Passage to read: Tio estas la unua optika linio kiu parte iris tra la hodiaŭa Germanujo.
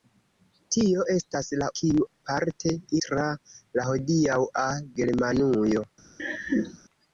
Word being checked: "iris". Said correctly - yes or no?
no